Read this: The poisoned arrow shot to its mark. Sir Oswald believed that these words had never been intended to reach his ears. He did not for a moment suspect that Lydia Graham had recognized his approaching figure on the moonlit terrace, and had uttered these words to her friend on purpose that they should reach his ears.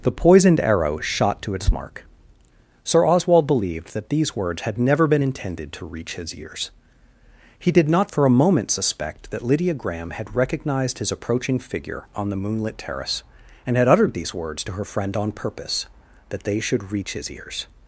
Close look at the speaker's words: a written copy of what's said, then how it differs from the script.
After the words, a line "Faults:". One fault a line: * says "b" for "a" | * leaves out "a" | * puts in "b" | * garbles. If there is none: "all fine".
The poisoned arrow shot to its mark. Sir Oswald believed that these words had never been intended to reach his ears. He did not for a moment suspect that Lydia Graham had recognized his approaching figure on the moonlit terrace, and had uttered these words to her friend on purpose that they should reach his ears.
Faults:
all fine